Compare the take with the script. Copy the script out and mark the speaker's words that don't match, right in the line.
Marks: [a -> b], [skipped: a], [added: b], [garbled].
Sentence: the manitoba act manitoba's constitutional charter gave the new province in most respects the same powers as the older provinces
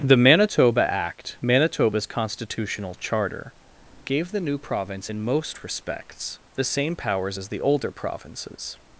the manitoba act manitoba's constitutional charter gave the new province in most respects the same powers as the older provinces